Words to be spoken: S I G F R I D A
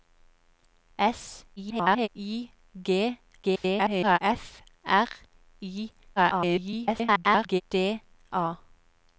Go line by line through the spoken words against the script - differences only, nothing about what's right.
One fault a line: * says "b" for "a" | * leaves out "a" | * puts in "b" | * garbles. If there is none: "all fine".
* garbles
* garbles
* garbles